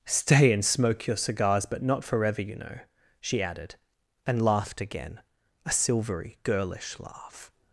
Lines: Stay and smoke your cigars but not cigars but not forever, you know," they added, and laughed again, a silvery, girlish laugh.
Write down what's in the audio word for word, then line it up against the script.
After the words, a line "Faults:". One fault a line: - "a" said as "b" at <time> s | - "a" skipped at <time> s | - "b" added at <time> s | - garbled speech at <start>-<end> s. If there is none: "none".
Stay and smoke your cigars but not forever, you know," she added, and laughed again, a silvery, girlish laugh.
Faults:
- "cigars but not" skipped at 2.0 s
- "they" said as "she" at 3.2 s